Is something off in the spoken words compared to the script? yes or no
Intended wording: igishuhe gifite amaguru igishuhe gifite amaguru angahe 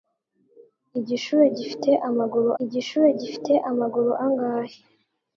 no